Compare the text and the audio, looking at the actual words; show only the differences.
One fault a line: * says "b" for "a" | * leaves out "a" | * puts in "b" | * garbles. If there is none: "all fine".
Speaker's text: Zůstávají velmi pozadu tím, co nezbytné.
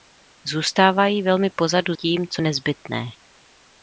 all fine